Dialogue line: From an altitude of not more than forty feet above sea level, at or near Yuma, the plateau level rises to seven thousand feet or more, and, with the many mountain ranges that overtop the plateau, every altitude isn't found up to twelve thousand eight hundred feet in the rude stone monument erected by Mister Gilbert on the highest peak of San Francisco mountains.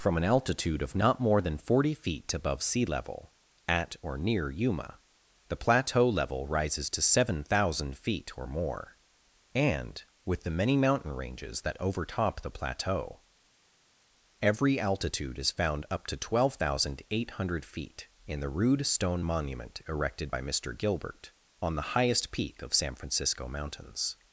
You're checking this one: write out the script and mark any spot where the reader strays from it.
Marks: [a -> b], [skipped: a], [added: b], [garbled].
From an altitude of not more than forty feet above sea level, at or near Yuma, the plateau level rises to seven thousand feet or more, and, with the many mountain ranges that overtop the plateau, every altitude [isn't -> is] found up to twelve thousand eight hundred feet in the rude stone monument erected by Mister Gilbert on the highest peak of San Francisco mountains.